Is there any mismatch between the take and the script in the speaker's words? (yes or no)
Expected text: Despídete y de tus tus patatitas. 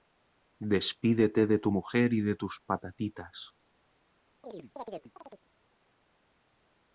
yes